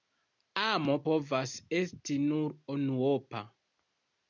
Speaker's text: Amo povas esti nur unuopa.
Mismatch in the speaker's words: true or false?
false